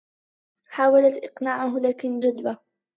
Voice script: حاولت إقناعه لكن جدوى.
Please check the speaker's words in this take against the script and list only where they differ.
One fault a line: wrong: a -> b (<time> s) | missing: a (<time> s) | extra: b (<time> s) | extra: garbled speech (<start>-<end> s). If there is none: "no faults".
no faults